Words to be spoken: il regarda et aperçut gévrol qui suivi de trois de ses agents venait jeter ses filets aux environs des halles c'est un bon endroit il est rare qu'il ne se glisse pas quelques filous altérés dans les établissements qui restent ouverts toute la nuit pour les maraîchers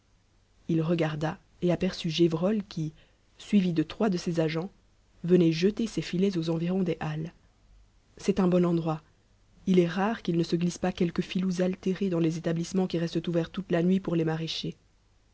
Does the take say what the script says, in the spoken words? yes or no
yes